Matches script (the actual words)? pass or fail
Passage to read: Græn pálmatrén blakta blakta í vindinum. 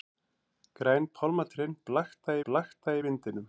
pass